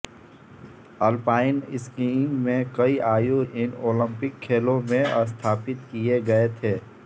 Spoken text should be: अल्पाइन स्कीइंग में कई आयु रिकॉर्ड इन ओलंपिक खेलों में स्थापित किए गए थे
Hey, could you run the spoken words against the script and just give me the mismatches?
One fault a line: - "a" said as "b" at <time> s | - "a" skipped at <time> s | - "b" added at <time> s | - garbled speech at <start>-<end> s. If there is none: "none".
- "रिकॉर्ड" skipped at 3.4 s